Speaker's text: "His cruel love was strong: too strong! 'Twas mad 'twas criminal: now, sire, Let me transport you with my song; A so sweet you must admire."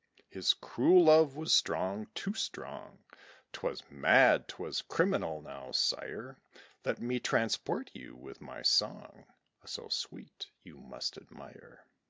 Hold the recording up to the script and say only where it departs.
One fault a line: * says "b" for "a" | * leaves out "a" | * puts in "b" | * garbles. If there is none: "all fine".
all fine